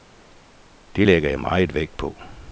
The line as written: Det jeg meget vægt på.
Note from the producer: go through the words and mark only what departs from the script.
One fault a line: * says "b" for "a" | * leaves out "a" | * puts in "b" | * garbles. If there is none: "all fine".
* puts in "lægger"